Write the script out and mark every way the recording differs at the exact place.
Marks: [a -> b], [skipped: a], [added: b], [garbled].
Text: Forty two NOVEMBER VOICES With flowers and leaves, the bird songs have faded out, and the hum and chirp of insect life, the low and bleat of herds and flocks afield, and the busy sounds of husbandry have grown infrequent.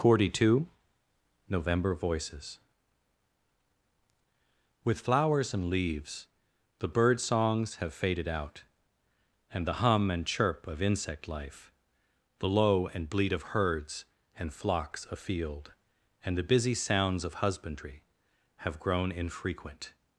Forty two NOVEMBER VOICES With flowers and leaves, the bird songs have faded out, and the hum and chirp of insect life, the low and bleat of herds and flocks afield, and the busy sounds of husbandry have grown infrequent.